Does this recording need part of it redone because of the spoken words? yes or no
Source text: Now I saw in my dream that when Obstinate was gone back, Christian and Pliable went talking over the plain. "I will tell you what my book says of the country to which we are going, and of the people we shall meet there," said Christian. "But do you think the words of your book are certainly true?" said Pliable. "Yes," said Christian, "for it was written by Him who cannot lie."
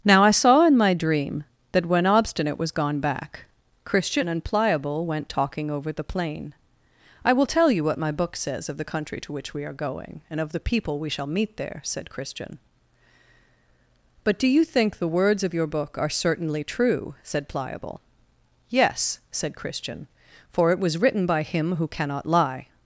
no